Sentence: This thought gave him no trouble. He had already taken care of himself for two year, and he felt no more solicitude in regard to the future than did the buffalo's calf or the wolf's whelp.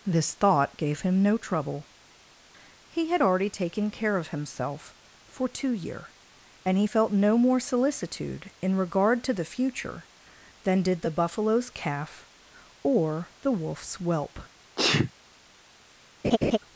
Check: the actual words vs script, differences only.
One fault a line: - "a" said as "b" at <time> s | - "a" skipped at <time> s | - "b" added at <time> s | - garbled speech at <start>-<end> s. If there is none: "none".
none